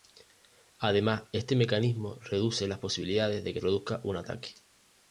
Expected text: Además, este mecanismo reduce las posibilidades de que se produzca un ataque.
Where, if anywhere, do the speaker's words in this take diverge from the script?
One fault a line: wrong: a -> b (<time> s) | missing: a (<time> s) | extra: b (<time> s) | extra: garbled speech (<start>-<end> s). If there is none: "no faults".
missing: se (3.6 s)